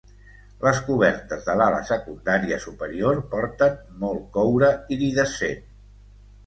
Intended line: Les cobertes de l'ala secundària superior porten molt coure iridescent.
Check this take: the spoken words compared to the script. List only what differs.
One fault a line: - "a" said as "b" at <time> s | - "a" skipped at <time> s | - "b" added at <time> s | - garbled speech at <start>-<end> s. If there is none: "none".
none